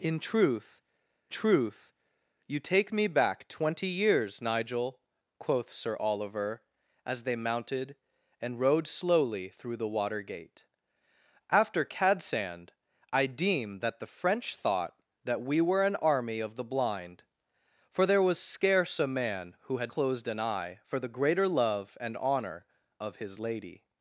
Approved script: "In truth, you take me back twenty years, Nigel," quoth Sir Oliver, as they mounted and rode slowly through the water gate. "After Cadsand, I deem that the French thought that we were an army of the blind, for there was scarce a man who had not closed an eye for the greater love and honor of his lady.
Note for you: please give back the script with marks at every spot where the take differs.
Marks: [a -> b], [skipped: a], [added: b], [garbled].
"In truth, [added: truth] you take me back twenty years, Nigel," quoth Sir Oliver, as they mounted and rode slowly through the water gate. "After Cadsand, I deem that the French thought that we were an army of the blind, for there was scarce a man who had [skipped: not] closed an eye for the greater love and honor of his lady.